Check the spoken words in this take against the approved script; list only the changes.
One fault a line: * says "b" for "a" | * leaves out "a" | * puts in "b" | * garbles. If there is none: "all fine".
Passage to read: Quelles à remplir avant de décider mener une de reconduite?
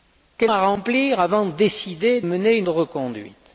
all fine